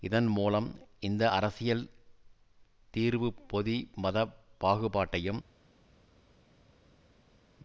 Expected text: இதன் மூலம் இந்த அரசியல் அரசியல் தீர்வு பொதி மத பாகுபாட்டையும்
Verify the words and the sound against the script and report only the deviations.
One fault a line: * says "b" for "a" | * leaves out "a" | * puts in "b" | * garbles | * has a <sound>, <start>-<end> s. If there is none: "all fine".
* leaves out "அரசியல்"